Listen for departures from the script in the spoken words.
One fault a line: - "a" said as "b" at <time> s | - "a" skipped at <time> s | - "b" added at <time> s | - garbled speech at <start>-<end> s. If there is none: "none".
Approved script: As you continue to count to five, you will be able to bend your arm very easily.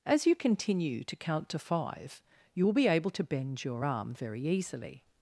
none